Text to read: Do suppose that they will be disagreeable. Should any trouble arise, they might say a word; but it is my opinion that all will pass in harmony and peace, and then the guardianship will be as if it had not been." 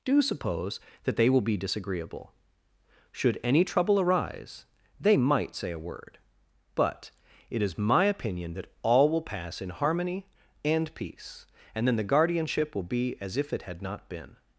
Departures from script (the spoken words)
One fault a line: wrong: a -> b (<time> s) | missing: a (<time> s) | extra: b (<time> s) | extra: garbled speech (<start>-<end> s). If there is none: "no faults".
no faults